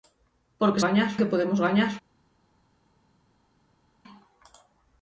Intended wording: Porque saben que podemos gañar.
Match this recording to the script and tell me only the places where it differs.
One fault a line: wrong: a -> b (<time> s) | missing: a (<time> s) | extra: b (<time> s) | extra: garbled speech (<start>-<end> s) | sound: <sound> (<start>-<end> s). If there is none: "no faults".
wrong: saben -> gañar (0.8 s)